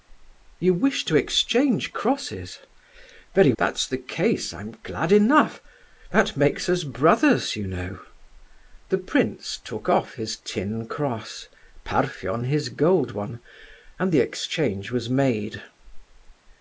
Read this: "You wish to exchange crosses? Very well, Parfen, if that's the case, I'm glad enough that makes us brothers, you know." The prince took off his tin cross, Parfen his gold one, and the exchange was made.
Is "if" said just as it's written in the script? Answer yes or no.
no